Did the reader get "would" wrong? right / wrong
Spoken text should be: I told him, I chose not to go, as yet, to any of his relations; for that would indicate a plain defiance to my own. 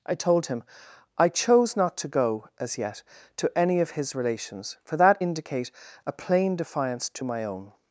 wrong